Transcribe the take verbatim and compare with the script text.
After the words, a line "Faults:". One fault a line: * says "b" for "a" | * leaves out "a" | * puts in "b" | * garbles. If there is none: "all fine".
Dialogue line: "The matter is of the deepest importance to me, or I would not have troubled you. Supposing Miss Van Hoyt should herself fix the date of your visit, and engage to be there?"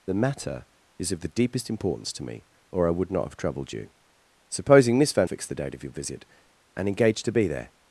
"The matter is of the deepest importance to me, or I would not have troubled you. Supposing Miss Van Fix the date of your visit, and engage to be there?"
Faults:
* leaves out "Hoyt should herself"